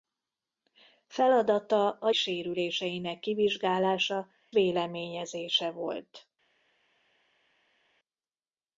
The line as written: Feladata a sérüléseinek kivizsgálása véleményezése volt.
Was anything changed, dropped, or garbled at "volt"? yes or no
no